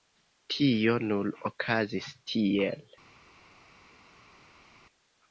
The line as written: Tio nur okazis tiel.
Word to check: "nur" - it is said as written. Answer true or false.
true